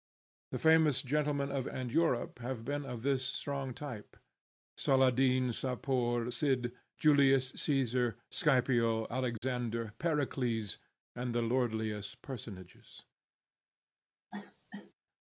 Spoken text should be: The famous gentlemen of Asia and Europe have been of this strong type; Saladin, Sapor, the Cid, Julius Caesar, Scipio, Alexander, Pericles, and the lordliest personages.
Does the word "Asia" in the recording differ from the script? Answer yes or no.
yes